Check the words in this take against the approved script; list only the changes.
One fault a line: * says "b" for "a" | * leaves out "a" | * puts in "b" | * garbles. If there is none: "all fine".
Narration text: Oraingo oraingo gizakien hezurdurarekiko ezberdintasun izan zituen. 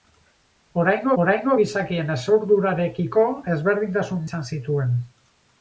all fine